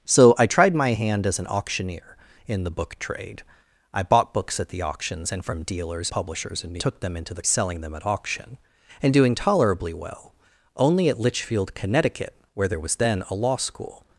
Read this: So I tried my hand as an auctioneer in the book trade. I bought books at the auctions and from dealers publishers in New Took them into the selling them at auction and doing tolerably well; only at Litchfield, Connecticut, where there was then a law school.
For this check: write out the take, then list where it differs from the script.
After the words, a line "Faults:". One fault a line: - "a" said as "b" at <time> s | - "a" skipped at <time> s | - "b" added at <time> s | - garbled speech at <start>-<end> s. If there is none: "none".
So I tried my hand as an auctioneer in the book trade. I bought books at the auctions and from dealers publishers in New Took them into the selling them at auction and doing tolerably well; only at Litchfield, Connecticut, where there was then a law school.
Faults:
none